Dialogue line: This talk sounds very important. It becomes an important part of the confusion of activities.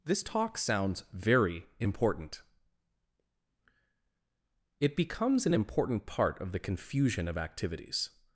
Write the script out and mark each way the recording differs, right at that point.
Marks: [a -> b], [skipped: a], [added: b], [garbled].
This talk sounds very important. It becomes an important part of the confusion of activities.